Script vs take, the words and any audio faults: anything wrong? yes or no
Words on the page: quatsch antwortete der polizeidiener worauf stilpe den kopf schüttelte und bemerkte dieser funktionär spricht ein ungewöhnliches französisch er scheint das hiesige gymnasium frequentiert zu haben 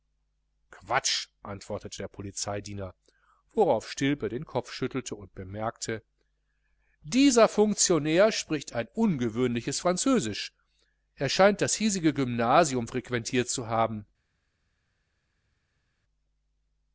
no